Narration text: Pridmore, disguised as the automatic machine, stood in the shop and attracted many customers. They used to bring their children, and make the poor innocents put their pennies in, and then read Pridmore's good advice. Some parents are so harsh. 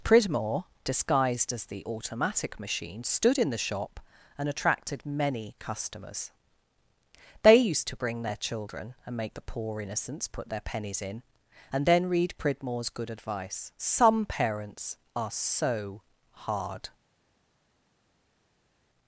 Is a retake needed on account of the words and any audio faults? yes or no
yes